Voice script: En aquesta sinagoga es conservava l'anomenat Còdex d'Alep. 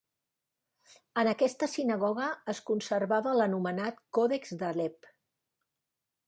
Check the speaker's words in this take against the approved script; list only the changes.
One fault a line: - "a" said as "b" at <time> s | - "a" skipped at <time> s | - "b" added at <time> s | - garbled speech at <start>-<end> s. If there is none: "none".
none